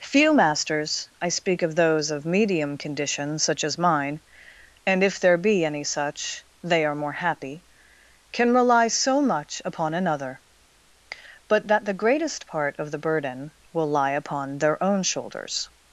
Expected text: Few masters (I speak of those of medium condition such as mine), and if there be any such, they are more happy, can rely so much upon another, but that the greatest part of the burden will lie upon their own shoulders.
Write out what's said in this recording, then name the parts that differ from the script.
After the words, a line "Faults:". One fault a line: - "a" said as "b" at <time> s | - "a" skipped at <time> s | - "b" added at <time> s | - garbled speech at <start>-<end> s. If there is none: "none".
Few masters (I speak of those of medium condition such as mine), and if there be any such, they are more happy, can rely so much upon another, but that the greatest part of the burden will lie upon their own shoulders.
Faults:
none